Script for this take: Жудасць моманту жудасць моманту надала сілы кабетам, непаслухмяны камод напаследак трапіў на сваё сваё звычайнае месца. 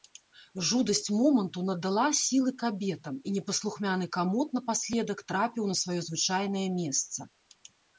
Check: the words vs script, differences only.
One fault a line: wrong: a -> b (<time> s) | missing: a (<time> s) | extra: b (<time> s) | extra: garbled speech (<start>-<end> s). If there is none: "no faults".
missing: жудасць моманту (1.6 s)
extra: і (3.3 s)
missing: сваё (6.0 s)